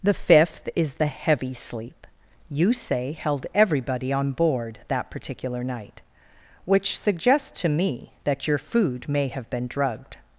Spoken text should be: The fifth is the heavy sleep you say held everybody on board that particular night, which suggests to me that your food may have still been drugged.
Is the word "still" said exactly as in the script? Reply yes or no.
no